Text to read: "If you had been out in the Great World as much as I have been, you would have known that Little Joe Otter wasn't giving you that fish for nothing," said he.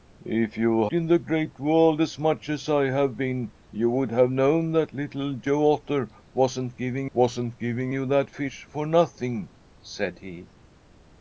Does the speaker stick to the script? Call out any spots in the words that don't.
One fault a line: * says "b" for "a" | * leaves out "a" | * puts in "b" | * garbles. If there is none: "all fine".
* leaves out "had been out"
* puts in "wasn't giving"